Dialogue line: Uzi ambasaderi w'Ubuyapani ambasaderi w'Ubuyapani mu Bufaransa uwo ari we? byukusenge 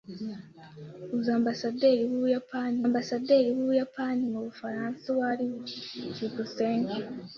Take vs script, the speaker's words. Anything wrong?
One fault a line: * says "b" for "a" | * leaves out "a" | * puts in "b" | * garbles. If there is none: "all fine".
all fine